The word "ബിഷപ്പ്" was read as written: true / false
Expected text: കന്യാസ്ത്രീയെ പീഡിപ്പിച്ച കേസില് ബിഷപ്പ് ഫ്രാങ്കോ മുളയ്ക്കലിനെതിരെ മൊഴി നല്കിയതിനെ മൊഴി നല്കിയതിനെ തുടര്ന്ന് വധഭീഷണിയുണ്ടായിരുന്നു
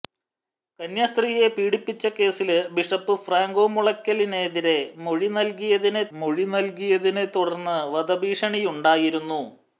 true